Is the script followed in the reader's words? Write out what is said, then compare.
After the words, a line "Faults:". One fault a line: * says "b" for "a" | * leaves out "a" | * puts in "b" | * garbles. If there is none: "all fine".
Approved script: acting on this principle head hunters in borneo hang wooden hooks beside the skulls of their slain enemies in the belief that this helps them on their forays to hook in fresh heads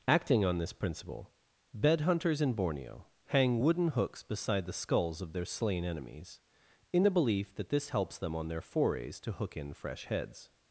acting on this principle bed hunters in borneo hang wooden hooks beside the skulls of their slain enemies in the belief that this helps them on their forays to hook in fresh heads
Faults:
* says "bed" for "head"